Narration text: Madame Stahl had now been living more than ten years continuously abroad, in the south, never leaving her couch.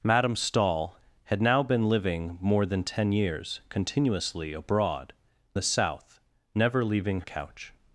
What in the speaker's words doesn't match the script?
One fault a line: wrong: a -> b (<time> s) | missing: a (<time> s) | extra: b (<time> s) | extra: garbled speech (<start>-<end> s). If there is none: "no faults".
missing: in (5.1 s)
missing: her (7.2 s)